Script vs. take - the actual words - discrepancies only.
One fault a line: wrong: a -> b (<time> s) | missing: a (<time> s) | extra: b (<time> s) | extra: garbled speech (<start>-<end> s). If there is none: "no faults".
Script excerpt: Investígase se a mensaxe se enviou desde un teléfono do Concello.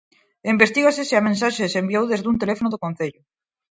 no faults